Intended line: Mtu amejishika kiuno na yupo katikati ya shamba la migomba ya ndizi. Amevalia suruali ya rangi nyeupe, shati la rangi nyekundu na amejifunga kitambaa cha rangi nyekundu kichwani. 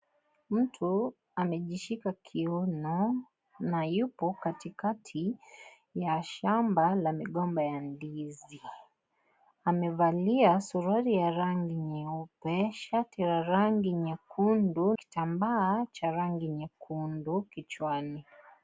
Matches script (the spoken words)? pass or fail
fail